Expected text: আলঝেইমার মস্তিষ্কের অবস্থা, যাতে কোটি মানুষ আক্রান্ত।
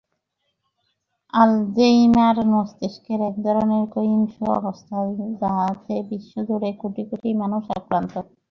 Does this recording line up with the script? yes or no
no